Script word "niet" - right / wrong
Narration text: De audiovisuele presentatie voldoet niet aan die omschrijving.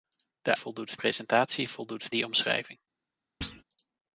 wrong